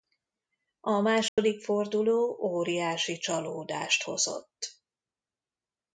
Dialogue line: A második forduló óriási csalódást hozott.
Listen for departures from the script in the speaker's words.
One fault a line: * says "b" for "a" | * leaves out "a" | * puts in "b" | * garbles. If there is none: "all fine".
all fine